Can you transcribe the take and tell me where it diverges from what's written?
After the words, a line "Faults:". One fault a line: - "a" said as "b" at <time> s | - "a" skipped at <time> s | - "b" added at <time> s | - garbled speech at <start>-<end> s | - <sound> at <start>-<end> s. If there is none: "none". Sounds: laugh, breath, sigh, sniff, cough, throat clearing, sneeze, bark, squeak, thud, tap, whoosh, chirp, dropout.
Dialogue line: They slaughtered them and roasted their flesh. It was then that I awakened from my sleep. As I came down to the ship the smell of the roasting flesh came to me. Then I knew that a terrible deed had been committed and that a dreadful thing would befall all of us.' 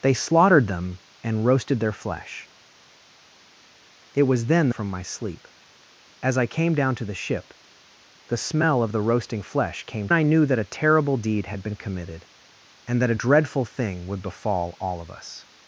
They slaughtered them and roasted their flesh. It was then from my sleep. As I came down to the ship the smell of the roasting flesh came I knew that a terrible deed had been committed and that a dreadful thing would befall all of us.'
Faults:
- "that I awakened" skipped at 4.7 s
- "to me Then" skipped at 10.1 s